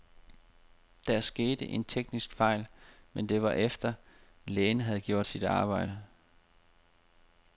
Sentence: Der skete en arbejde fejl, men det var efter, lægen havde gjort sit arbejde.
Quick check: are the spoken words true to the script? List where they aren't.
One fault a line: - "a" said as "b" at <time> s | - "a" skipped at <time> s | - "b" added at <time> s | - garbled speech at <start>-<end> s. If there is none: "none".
- "arbejde" said as "teknisk" at 1.8 s